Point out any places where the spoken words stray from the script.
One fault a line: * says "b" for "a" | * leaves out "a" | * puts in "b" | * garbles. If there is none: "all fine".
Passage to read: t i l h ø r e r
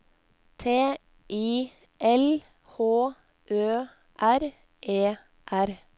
all fine